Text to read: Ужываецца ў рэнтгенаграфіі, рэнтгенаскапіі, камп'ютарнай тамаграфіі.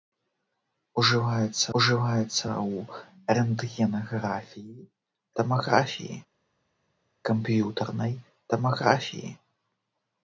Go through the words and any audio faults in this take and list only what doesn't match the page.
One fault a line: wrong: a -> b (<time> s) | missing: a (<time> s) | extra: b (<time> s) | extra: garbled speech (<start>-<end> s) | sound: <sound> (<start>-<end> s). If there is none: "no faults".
extra: ужываецца (1.8 s)
wrong: рэнтгенаскапіі -> тамаграфіі (5.4 s)